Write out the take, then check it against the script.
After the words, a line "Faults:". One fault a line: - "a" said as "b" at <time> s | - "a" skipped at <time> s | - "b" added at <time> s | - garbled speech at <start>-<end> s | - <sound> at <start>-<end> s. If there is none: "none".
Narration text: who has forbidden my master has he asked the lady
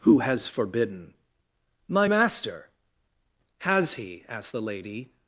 who has forbidden my master has he asked the lady
Faults:
none